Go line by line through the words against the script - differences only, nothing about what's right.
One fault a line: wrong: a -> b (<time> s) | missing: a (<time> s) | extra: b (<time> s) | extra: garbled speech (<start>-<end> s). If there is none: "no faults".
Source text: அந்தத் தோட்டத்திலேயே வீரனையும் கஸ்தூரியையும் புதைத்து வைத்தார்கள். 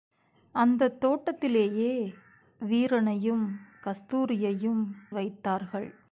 missing: புதைத்து (4.8 s)